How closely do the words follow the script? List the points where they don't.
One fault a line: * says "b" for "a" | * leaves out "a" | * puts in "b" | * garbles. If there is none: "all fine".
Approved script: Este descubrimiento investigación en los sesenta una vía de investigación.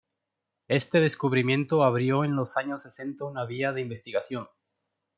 * says "abrió" for "investigación"
* puts in "años"